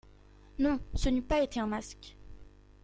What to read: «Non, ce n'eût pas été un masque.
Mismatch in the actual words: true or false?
false